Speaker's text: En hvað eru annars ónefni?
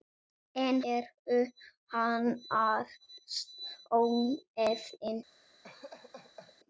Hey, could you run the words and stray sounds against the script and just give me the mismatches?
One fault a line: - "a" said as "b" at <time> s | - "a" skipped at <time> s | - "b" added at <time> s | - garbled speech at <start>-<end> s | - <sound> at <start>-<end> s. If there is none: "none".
- "hvað" skipped at 0.8 s
- laugh at 5.6-6.6 s